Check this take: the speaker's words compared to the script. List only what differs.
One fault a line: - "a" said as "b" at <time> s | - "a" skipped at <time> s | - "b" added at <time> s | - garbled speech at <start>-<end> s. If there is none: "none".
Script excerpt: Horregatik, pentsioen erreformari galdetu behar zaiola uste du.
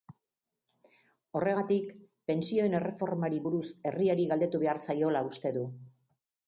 - "buruz herriari" added at 3.5 s